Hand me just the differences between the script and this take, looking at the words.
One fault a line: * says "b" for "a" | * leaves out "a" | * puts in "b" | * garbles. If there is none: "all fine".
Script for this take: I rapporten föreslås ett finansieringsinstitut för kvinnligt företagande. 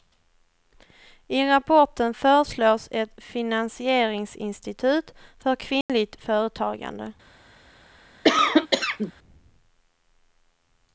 all fine